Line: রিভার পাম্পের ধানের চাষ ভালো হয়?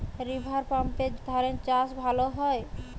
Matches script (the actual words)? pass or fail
pass